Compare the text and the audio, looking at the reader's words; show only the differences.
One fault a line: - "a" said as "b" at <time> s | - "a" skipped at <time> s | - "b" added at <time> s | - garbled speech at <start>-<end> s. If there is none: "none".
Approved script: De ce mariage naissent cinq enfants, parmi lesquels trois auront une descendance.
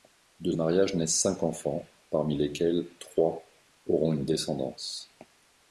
- "ce" skipped at 0.5 s